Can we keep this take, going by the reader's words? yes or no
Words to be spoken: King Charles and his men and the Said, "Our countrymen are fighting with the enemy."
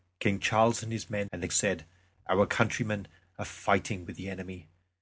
yes